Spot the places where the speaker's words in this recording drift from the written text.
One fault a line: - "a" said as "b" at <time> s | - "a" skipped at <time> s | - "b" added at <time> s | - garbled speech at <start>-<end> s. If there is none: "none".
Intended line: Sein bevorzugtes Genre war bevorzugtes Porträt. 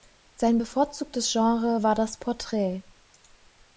- "bevorzugtes" said as "das" at 1.9 s